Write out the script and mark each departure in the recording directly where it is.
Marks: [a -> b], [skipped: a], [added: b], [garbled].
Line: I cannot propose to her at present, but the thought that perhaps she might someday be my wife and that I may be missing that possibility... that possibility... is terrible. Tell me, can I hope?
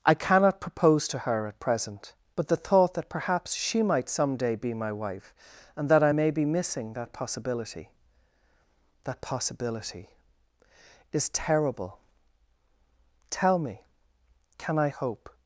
I cannot propose to her at present, but the thought that perhaps she might someday be my wife and that I may be missing that possibility... that possibility... is terrible. Tell me, can I hope?